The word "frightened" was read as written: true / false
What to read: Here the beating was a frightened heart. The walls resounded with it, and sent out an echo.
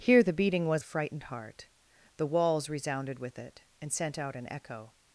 true